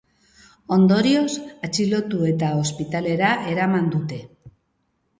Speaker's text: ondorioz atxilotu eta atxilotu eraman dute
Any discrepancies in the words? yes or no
yes